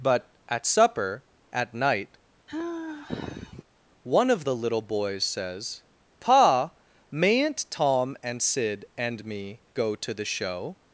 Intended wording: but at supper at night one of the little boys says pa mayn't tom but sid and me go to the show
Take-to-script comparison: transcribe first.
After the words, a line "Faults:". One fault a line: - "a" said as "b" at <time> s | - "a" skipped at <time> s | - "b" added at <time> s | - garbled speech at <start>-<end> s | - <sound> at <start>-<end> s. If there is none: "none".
but at supper at night one of the little boys says pa mayn't tom and sid and me go to the show
Faults:
- sigh at 2.5-3.6 s
- "but" said as "and" at 8.2 s